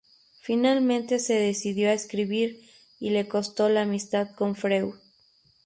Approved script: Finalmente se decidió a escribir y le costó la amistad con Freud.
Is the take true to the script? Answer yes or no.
yes